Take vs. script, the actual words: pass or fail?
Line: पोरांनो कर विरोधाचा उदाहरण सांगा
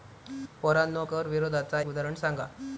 pass